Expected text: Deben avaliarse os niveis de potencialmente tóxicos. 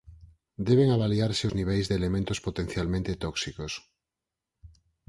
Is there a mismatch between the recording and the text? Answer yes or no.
yes